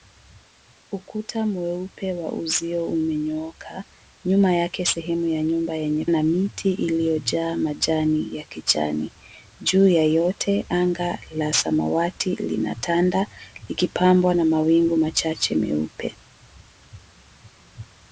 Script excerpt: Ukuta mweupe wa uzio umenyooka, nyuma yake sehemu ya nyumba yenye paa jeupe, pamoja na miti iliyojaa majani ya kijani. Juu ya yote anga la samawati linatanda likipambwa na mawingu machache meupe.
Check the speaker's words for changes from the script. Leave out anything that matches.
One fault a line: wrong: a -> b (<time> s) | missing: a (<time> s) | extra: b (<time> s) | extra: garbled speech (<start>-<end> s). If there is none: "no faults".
missing: paa jeupe pamoja (6.0 s)